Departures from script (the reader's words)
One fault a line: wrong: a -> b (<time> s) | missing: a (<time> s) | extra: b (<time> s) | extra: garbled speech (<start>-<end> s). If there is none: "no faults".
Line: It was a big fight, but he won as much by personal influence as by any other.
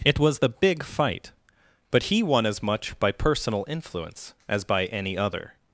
wrong: a -> the (0.4 s)